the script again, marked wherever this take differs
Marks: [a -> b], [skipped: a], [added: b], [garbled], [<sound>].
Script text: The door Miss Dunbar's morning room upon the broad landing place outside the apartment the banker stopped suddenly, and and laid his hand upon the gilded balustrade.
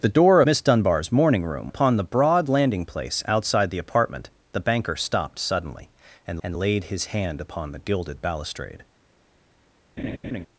The door Miss Dunbar's morning room upon the broad landing place outside the apartment the banker stopped suddenly, and and laid his hand upon the gilded balustrade. [laugh]